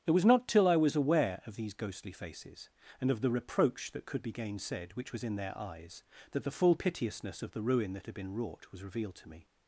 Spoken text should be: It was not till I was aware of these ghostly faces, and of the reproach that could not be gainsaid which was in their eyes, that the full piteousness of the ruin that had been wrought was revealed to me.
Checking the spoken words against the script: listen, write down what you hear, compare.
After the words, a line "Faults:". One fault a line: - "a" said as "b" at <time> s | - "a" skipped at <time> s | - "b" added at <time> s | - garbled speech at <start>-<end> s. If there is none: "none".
It was not till I was aware of these ghostly faces, and of the reproach that could be gainsaid which was in their eyes, that the full piteousness of the ruin that had been wrought was revealed to me.
Faults:
- "not" skipped at 4.2 s